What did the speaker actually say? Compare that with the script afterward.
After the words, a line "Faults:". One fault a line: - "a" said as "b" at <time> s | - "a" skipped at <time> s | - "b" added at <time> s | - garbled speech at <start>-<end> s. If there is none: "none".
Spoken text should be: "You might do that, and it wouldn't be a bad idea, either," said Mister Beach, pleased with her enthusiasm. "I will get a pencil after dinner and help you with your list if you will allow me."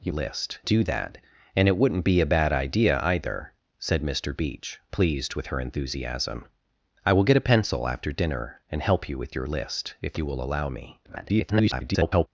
"You list do that, and it wouldn't be a bad idea, either," said Mister Beach, pleased with her enthusiasm. "I will get a pencil after dinner and help you with your list if you will allow me." [garbled]
Faults:
- "might" said as "list" at 0.1 s
- garbled speech at 11.0-12.3 s